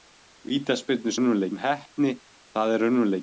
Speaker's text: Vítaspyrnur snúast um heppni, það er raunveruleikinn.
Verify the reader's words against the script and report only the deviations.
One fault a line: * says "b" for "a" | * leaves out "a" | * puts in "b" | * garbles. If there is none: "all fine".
* says "raunveruleikinn" for "snúast"